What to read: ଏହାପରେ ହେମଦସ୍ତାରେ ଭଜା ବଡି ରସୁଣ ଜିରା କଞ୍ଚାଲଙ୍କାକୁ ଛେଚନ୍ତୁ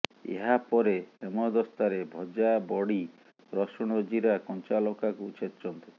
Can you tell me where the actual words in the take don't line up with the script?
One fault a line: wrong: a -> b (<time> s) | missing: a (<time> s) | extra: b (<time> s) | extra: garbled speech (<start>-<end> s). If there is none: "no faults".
no faults